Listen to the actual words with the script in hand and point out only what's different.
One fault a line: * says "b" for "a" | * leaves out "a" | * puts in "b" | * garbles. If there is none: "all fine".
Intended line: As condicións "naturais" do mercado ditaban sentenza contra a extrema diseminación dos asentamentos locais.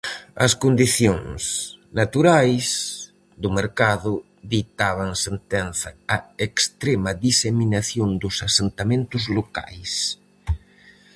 * leaves out "contra"